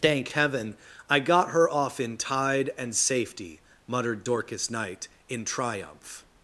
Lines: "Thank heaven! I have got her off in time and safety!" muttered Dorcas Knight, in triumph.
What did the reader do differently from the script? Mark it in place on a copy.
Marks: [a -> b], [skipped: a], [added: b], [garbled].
"Thank heaven! I [skipped: have] got her off in [time -> tide] and safety!" muttered Dorcas Knight, in triumph.